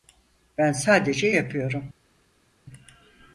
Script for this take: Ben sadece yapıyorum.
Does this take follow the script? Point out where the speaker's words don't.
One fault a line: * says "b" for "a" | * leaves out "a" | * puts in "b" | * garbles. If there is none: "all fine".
all fine